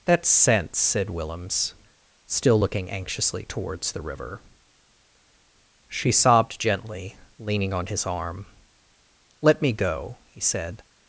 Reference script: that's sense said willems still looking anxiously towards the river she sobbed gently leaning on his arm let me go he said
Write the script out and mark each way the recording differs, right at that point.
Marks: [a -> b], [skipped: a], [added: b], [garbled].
that's sense said willems still looking anxiously towards the river she sobbed gently leaning on his arm let me go he said